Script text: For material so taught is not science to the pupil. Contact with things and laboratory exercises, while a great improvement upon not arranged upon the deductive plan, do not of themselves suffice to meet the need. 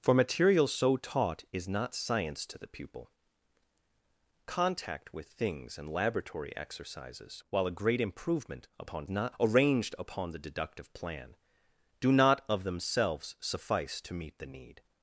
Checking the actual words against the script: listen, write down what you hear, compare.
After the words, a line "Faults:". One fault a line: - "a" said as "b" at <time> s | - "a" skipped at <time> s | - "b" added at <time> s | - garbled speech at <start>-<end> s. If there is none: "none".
For material so taught is not science to the pupil. Contact with things and laboratory exercises, while a great improvement upon not arranged upon the deductive plan, do not of themselves suffice to meet the need.
Faults:
none